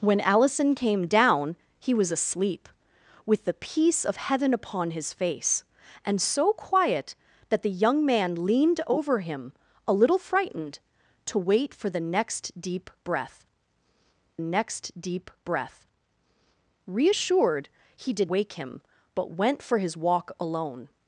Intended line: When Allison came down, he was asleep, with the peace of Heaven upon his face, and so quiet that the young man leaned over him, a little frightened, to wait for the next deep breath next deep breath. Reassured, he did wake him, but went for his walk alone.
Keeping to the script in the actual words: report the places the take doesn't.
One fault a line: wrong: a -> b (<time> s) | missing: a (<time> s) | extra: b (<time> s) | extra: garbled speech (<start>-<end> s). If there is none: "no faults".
no faults